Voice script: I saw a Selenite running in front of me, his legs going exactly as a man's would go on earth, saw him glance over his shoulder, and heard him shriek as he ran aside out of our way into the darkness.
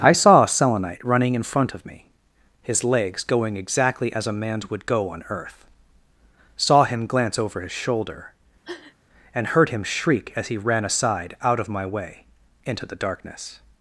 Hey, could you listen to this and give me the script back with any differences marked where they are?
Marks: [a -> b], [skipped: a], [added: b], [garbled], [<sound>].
I saw a Selenite running in front of me, his legs going exactly as a man's would go on earth, saw him glance over his shoulder, [sniff] and heard him shriek as he ran aside out of [our -> my] way into the darkness.